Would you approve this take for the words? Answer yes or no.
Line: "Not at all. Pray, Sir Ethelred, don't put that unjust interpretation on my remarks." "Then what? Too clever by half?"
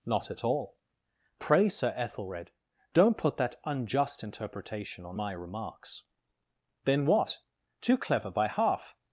yes